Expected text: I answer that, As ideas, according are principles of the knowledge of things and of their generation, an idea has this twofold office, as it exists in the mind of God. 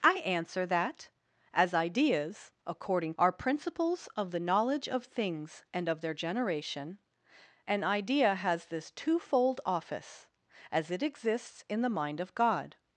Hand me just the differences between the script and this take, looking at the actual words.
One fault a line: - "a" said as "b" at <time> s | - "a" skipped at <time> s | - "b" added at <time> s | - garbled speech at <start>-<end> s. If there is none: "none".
none